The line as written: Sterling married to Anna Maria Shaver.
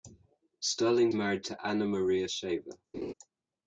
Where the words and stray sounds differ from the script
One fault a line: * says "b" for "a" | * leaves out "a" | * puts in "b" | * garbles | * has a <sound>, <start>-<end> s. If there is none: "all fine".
* has a laugh, 2.9-3.1 s